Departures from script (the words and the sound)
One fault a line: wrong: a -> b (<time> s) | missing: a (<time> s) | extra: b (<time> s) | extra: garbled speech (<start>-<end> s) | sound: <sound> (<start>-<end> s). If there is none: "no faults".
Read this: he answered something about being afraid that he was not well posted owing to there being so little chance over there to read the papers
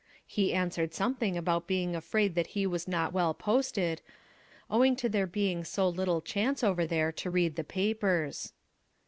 no faults